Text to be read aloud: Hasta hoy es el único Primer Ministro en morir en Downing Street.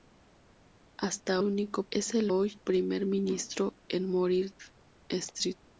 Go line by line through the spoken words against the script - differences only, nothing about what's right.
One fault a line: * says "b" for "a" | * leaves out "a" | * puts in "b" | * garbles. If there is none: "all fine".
* says "único" for "hoy"
* says "hoy" for "único"
* leaves out "en Downing"